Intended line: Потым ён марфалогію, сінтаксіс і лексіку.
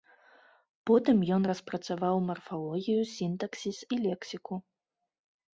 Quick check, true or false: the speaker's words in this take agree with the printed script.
false